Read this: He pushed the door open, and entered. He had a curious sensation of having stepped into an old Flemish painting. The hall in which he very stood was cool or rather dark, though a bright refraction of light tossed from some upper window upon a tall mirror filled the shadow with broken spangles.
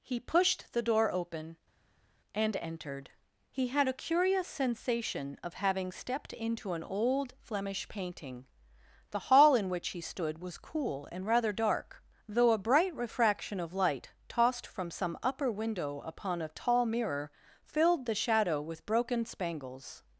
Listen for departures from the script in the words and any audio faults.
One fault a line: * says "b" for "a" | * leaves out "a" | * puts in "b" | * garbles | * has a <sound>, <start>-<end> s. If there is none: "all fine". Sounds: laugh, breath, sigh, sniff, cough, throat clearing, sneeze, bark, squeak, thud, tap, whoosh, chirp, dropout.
* leaves out "very"
* says "and" for "or"